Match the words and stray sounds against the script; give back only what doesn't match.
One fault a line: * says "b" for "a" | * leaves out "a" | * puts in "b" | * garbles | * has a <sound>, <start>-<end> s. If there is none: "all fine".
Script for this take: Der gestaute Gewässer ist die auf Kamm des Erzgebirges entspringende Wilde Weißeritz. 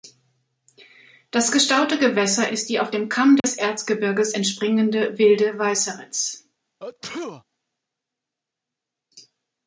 * says "Das" for "Der"
* puts in "dem"
* has a dropout, 3.4-3.4 s
* has a sneeze, 6.8-7.4 s